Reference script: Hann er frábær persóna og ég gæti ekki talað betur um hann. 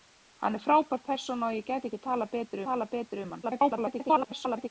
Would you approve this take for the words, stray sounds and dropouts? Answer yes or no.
no